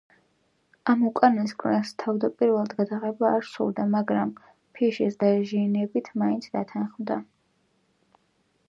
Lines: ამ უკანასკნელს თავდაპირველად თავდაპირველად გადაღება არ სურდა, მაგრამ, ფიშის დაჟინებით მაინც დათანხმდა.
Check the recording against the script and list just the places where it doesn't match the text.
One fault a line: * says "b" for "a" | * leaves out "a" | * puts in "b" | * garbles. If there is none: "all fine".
* leaves out "თავდაპირველად"